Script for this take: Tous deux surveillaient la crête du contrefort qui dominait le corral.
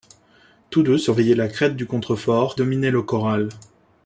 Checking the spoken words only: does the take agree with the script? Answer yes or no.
no